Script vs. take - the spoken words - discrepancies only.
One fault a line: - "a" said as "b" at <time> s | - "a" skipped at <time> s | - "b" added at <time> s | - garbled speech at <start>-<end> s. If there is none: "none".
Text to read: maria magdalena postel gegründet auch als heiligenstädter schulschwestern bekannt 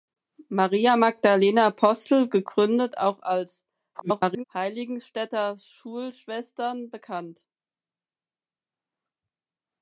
- garbled speech at 3.9-4.4 s